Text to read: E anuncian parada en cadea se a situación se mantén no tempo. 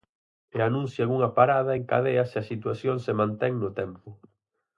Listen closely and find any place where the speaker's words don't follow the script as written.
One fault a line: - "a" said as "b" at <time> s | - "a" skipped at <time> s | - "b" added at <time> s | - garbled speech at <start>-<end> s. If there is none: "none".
- "unha" added at 1.2 s